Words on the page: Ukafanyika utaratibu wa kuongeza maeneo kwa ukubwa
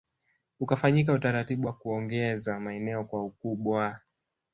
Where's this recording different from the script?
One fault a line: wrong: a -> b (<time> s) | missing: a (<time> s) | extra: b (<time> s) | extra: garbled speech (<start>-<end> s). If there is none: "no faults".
no faults